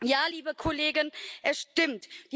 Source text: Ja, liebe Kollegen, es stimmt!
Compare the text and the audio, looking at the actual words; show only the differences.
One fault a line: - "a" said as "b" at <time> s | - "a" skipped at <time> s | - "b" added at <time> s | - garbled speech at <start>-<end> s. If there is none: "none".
none